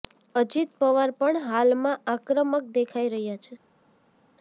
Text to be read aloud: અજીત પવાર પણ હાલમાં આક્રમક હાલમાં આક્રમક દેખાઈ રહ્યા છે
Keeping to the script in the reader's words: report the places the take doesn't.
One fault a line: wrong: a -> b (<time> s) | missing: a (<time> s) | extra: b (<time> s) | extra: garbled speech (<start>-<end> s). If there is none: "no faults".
missing: હાલમાં આક્રમક (2.8 s)